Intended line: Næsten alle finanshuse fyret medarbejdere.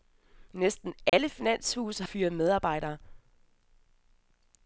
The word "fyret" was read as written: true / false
true